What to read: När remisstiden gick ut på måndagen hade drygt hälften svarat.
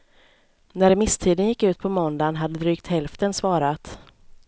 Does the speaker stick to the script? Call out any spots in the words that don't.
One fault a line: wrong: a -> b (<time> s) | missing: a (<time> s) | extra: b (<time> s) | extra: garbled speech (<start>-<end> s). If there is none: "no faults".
no faults